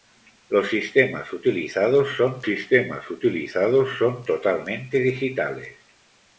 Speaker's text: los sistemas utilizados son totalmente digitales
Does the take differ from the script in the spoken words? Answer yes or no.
yes